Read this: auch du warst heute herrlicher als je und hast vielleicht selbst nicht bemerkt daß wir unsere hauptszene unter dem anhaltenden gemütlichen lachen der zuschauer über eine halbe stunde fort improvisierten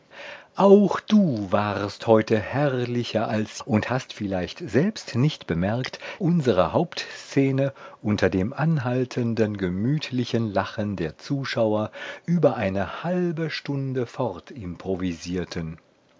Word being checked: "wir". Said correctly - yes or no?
no